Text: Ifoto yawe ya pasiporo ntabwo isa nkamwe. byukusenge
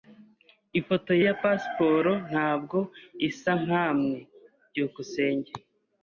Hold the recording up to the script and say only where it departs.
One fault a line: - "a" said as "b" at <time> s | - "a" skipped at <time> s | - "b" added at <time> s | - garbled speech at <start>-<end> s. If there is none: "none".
- "yawe" skipped at 1.1 s